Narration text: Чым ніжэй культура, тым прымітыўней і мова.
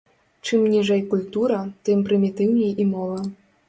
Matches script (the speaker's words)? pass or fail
pass